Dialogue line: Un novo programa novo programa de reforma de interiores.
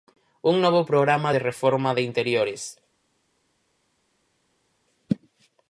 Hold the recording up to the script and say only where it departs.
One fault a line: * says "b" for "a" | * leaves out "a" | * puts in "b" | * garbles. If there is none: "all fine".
* leaves out "novo programa"